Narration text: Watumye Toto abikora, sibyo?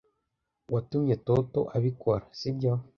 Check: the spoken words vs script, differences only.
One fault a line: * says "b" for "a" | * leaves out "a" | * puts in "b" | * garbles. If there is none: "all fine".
all fine